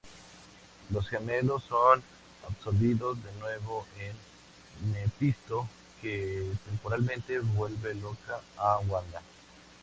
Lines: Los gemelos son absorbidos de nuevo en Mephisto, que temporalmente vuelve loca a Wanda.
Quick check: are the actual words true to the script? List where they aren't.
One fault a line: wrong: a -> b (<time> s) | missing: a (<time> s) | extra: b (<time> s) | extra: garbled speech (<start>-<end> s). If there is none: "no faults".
no faults